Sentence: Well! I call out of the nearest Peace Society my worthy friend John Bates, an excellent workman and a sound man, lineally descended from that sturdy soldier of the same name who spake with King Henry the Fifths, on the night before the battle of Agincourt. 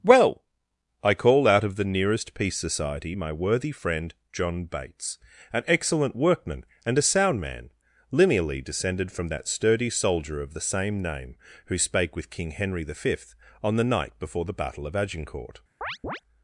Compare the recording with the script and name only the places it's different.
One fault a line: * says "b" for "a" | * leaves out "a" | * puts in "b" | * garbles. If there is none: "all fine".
* says "Fifth" for "Fifths"